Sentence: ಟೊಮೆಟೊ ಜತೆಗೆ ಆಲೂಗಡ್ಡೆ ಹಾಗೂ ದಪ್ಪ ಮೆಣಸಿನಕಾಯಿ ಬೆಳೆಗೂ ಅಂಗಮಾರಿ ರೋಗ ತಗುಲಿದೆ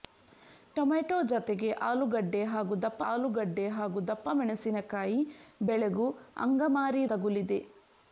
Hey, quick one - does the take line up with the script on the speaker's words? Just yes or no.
no